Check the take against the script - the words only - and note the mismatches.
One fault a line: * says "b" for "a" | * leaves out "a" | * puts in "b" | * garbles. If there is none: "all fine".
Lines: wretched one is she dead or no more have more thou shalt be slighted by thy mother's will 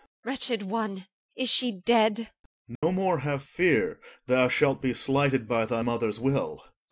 * says "fear" for "more"